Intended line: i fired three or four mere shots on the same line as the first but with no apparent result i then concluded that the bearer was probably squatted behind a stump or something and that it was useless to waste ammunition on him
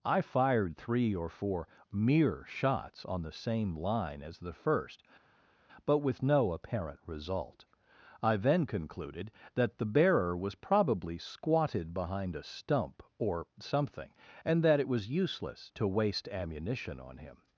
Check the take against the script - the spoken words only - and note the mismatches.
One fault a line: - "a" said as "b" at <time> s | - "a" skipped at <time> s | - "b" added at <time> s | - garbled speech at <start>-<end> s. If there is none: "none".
none